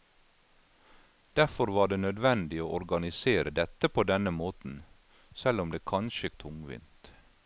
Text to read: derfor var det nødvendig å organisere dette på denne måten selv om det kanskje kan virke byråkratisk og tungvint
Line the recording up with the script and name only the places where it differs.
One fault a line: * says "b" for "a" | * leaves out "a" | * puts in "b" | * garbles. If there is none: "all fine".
* leaves out "kan virke byråkratisk"